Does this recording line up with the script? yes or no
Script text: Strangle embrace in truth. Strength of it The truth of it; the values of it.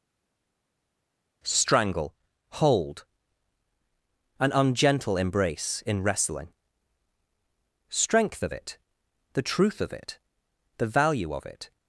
no